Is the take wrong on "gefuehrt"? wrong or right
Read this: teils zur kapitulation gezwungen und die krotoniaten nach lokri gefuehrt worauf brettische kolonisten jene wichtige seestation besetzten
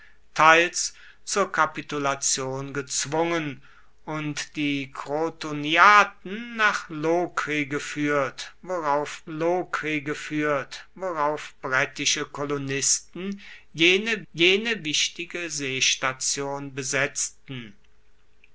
right